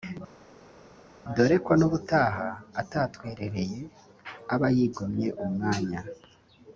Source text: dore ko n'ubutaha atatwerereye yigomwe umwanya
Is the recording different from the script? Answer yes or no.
yes